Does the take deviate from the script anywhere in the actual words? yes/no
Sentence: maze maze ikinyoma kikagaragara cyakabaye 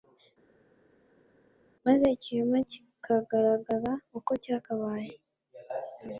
yes